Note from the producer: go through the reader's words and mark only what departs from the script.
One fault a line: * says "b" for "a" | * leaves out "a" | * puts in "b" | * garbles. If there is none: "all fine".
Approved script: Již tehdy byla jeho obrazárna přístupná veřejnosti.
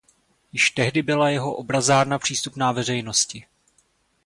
all fine